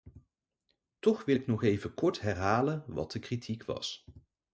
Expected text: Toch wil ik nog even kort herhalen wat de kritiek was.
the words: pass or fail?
pass